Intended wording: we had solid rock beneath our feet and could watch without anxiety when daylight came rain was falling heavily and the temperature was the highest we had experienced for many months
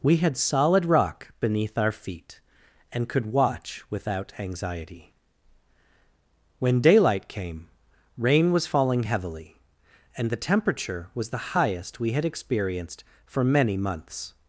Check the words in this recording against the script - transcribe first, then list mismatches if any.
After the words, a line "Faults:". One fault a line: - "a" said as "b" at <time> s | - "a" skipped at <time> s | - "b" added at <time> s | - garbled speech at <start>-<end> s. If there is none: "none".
we had solid rock beneath our feet and could watch without anxiety when daylight came rain was falling heavily and the temperature was the highest we had experienced for many months
Faults:
none